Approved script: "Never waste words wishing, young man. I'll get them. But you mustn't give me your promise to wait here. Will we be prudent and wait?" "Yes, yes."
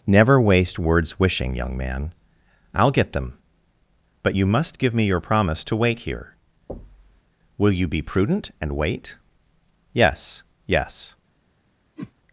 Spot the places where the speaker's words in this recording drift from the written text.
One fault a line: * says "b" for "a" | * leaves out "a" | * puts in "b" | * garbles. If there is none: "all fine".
* says "must" for "mustn't"
* says "you" for "we"